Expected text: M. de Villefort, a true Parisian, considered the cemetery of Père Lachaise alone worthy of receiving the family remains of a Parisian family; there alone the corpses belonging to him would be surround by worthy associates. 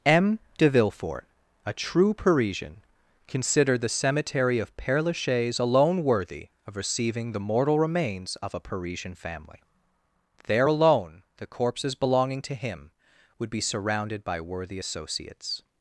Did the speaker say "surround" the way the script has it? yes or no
no